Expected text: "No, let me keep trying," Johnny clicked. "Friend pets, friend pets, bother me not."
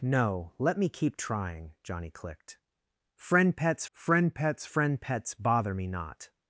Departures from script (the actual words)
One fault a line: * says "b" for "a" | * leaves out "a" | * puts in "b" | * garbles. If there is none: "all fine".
* puts in "friend pets"